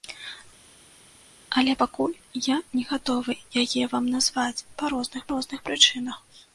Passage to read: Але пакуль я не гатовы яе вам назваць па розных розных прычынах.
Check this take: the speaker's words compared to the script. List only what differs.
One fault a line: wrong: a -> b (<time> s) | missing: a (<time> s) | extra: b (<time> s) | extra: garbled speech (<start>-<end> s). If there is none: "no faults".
no faults